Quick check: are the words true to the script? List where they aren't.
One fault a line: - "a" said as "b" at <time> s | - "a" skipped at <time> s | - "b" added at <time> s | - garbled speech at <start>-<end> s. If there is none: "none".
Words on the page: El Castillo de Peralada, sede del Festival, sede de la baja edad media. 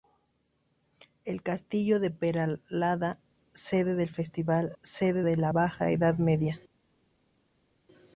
none